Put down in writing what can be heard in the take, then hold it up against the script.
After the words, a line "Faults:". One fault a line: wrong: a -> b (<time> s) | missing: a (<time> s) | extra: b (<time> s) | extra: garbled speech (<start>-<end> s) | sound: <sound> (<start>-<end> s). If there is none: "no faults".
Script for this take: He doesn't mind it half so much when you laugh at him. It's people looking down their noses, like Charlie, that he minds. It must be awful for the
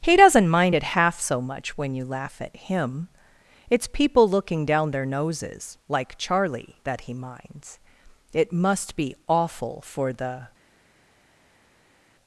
He doesn't mind it half so much when you laugh at him. It's people looking down their noses, like Charlie, that he minds. It must be awful for the
Faults:
no faults